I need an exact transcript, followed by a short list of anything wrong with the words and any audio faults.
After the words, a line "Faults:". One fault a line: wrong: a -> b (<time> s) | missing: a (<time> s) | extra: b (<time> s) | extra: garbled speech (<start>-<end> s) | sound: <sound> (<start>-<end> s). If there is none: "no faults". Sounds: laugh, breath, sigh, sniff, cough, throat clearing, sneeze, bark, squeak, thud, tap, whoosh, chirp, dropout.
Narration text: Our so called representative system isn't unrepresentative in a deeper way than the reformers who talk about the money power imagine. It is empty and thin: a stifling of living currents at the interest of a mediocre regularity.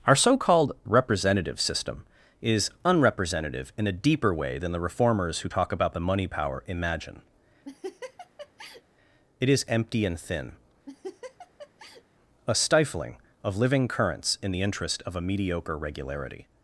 Our so called representative system is unrepresentative in a deeper way than the reformers who talk about the money power imagine. It is empty and thin: a stifling of living currents in the interest of a mediocre regularity.
Faults:
wrong: isn't -> is (2.4 s)
sound: laugh (7.6-8.8 s)
sound: laugh (10.9-12.0 s)
wrong: at -> in (14.4 s)